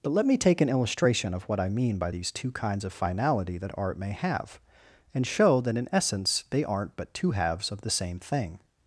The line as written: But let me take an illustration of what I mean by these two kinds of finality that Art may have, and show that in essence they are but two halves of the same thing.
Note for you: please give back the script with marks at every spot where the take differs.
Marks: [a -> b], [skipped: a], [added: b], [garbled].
But let me take an illustration of what I mean by these two kinds of finality that Art may have, and show that in essence they [are -> aren't] but two halves of the same thing.